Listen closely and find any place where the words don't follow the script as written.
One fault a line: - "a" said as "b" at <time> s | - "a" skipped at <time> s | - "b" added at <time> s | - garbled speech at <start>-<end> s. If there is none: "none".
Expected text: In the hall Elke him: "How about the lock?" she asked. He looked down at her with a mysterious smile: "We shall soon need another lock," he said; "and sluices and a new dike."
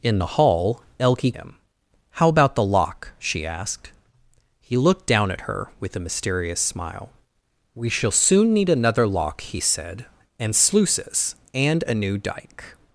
none